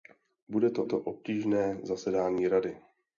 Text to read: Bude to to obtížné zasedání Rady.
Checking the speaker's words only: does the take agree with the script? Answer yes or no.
yes